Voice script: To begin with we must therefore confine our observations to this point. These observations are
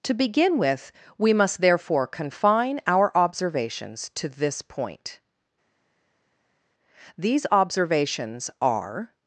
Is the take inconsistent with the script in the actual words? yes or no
no